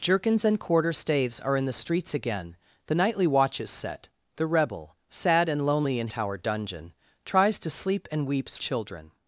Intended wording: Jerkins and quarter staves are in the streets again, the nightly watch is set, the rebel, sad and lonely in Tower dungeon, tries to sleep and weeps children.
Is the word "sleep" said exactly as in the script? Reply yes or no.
yes